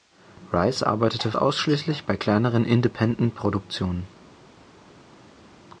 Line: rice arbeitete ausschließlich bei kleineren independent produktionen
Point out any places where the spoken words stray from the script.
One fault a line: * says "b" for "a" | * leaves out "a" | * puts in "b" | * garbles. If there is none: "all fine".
all fine